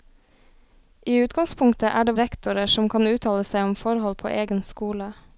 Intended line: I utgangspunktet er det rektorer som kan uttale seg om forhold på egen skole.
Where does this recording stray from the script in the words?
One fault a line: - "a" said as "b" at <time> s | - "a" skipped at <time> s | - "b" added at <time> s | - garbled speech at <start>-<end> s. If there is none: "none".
none